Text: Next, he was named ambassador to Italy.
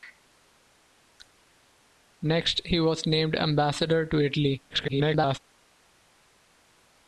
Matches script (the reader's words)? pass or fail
fail